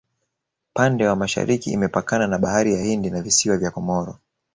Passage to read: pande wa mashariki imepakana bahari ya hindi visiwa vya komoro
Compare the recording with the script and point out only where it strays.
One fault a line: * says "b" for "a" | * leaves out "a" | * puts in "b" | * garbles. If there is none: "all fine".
* puts in "na"
* puts in "na"